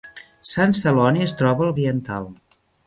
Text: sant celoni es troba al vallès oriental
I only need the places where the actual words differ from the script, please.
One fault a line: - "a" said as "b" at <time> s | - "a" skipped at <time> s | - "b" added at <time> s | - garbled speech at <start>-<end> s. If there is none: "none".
- "vallès" skipped at 1.8 s